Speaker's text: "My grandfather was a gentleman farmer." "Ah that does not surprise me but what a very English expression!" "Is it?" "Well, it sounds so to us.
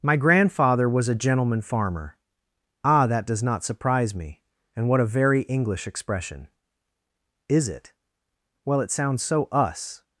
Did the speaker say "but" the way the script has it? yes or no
no